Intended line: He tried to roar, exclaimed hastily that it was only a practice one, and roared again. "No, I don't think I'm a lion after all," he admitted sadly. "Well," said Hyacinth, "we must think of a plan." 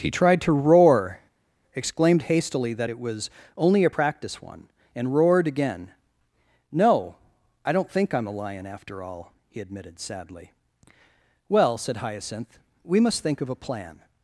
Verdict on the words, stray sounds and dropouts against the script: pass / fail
pass